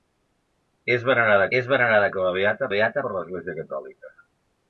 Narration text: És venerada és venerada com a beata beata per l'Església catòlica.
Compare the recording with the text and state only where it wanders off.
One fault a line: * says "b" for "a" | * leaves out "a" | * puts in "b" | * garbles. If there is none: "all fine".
all fine